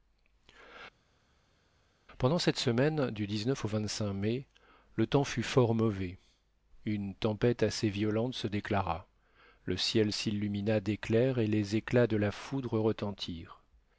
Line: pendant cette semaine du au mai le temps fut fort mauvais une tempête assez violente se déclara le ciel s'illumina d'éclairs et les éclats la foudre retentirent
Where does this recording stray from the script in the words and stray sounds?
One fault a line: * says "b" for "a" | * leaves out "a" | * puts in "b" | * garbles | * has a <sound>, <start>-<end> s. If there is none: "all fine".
* puts in "de"